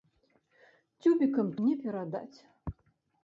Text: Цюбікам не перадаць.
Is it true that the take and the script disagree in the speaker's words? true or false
false